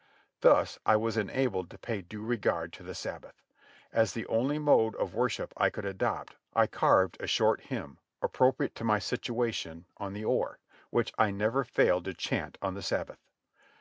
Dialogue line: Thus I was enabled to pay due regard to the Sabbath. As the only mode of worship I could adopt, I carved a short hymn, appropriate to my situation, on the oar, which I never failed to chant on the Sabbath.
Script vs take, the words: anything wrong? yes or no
no